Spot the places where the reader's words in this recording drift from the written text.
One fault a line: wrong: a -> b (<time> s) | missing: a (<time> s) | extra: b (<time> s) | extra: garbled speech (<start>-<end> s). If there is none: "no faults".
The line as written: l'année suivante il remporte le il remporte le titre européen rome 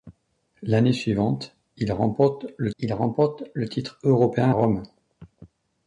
no faults